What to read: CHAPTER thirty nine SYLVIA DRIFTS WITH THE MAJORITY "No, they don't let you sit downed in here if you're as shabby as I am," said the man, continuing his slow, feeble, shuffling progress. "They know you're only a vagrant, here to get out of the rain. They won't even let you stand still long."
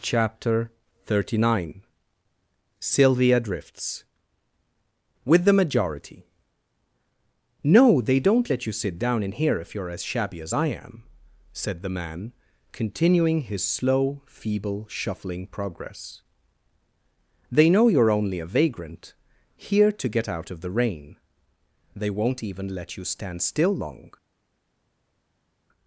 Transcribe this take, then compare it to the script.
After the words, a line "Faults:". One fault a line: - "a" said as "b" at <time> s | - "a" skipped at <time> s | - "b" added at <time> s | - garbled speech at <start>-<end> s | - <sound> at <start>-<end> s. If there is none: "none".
CHAPTER thirty nine SYLVIA DRIFTS WITH THE MAJORITY "No, they don't let you sit down in here if you're as shabby as I am," said the man, continuing his slow, feeble, shuffling progress. "They know you're only a vagrant, here to get out of the rain. They won't even let you stand still long."
Faults:
- "downed" said as "down" at 9.0 s